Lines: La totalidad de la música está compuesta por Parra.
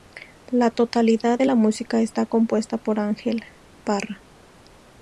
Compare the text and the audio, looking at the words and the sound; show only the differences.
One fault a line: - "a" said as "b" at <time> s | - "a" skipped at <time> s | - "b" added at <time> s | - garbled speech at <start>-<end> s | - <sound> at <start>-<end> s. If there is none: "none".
- "Ángel" added at 3.0 s